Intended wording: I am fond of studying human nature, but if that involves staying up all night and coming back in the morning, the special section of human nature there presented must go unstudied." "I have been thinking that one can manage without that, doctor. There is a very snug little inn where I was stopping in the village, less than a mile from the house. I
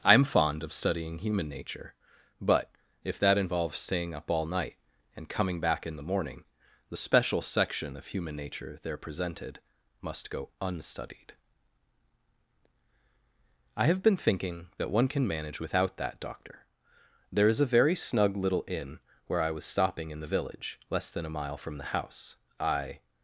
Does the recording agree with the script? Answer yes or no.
yes